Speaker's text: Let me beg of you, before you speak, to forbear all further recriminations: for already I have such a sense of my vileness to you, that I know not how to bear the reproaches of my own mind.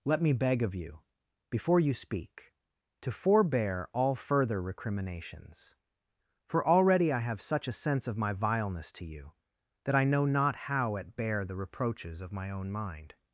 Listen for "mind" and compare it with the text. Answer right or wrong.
right